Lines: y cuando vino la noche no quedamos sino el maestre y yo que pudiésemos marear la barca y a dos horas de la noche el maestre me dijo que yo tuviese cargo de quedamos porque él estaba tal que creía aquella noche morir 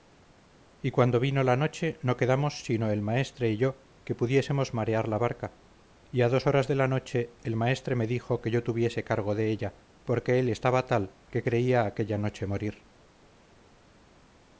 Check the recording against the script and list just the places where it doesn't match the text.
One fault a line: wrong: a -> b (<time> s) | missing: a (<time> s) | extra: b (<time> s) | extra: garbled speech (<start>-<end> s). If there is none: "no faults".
wrong: quedamos -> ella (9.5 s)